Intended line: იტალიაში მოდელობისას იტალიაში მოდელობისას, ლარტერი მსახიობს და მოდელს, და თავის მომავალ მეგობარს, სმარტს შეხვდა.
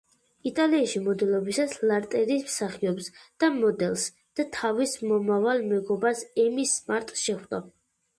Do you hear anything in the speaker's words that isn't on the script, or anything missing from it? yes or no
yes